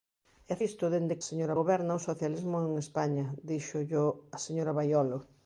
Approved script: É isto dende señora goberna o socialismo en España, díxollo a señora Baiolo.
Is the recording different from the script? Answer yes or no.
no